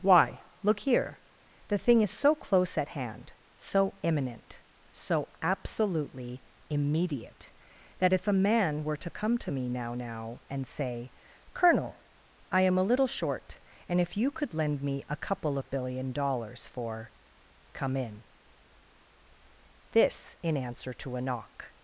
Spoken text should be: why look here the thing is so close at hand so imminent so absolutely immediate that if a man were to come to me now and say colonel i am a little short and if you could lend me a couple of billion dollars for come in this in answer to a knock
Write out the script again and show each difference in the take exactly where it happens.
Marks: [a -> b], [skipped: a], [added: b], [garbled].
why look here the thing is so close at hand so imminent so absolutely immediate that if a man were to come to me now [added: now] and say colonel i am a little short and if you could lend me a couple of billion dollars for come in this in answer to a knock